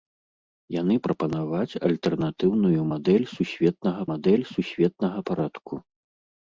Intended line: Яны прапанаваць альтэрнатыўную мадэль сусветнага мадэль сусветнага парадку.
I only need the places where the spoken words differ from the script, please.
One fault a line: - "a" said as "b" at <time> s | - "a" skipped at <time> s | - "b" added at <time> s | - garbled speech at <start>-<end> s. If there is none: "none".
none